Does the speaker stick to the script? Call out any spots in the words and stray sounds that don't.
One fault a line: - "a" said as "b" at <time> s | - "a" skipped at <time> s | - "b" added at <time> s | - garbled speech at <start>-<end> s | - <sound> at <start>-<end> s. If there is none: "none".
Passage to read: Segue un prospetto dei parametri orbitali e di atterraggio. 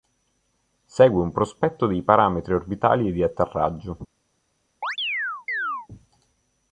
- chirp at 4.8-5.9 s